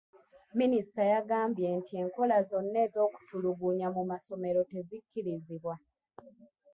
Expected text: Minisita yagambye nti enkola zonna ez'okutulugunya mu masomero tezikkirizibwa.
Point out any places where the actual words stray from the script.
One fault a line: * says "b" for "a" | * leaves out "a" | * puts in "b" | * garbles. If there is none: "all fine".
all fine